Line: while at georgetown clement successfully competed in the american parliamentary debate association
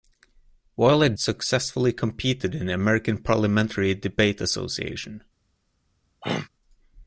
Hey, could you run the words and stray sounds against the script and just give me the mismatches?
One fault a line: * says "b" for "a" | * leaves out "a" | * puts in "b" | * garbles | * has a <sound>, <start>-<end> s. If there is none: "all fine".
* leaves out "georgetown clement"
* has a throat clearing, 6.2-6.5 s